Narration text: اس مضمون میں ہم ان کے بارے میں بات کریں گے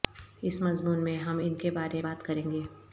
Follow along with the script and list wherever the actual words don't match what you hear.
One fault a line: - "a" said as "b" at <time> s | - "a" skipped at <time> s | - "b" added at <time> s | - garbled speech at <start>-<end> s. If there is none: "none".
- "میں" skipped at 2.0 s